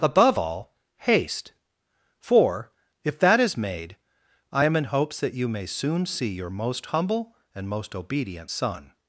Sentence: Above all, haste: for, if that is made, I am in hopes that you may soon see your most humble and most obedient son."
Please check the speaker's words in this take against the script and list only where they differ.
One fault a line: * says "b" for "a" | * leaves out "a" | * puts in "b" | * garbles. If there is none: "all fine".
all fine